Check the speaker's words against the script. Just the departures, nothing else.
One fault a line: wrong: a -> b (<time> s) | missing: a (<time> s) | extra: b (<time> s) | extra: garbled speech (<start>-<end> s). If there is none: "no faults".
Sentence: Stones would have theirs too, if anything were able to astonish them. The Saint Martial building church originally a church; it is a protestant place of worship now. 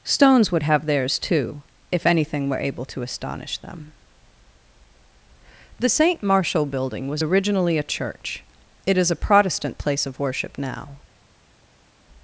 wrong: church -> was (7.1 s)